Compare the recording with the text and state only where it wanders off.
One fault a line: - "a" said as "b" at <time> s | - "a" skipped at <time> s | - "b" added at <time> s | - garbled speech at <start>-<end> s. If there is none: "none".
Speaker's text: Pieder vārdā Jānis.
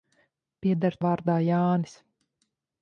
none